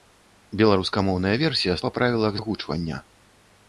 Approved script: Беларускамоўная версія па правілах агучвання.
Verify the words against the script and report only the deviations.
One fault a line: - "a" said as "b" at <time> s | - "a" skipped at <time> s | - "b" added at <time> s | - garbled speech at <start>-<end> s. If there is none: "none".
none